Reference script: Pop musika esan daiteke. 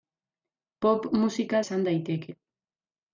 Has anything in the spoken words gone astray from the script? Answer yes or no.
no